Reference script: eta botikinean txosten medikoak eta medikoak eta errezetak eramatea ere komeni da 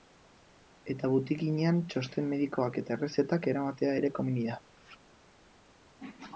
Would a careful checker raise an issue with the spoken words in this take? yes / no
yes